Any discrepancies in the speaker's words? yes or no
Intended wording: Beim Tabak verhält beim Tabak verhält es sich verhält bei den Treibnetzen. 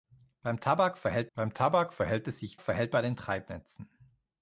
no